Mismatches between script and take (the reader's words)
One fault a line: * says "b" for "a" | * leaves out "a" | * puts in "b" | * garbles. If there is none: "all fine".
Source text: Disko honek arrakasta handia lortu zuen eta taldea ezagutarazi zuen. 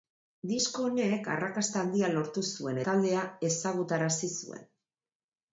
* leaves out "eta"